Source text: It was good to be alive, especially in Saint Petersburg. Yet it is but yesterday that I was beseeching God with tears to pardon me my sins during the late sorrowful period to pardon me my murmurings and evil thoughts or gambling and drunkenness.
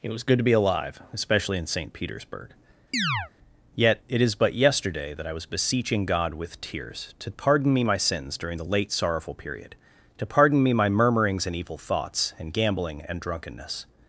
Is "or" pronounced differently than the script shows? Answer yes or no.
yes